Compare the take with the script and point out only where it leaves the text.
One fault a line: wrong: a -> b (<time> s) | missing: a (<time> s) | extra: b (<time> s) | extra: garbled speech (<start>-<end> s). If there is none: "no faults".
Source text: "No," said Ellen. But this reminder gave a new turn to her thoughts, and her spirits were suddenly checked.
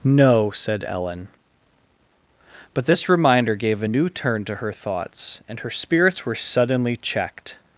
no faults